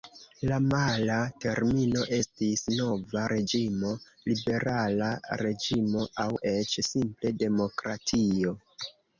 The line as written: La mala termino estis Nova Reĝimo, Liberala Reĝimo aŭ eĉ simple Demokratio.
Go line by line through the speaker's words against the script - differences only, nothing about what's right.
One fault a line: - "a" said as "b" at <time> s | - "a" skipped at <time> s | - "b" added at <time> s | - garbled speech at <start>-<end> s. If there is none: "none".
none